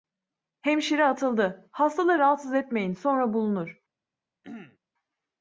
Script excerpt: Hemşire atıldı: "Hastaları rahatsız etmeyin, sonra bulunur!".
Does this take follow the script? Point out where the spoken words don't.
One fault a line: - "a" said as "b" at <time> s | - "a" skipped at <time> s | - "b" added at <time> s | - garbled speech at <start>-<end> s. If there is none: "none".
none